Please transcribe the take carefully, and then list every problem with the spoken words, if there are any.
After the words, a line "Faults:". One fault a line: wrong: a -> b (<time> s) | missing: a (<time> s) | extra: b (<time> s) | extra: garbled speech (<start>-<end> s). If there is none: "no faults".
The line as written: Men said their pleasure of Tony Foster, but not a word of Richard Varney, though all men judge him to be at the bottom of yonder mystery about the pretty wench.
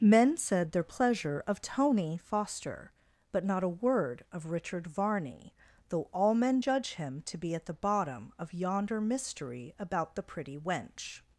Men said their pleasure of Tony Foster, but not a word of Richard Varney, though all men judge him to be at the bottom of yonder mystery about the pretty wench.
Faults:
no faults